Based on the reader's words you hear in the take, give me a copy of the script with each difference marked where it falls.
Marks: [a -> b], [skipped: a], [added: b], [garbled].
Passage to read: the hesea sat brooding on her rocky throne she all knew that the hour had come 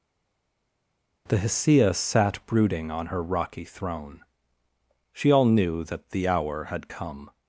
the hesea sat brooding on her rocky throne she all knew that the hour had come